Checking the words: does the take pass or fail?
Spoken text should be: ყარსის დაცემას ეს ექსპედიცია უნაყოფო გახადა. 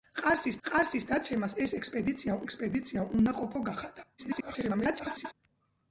fail